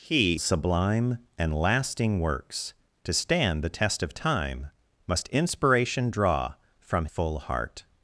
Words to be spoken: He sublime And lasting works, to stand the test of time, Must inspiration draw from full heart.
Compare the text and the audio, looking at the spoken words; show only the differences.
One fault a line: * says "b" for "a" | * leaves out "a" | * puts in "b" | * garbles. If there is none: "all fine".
all fine